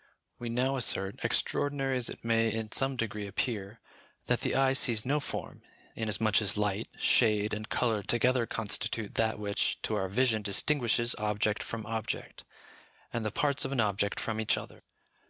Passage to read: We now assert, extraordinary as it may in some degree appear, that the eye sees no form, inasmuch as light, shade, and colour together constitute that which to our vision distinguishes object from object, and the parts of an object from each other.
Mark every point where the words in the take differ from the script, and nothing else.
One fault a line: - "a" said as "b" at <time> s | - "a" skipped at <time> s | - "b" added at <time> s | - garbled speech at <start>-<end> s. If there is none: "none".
none